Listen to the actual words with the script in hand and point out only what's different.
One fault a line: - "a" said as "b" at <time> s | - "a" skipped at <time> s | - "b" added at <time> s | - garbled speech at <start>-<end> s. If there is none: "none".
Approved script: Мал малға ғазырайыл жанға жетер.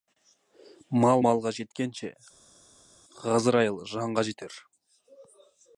- "жеткенше" added at 1.6 s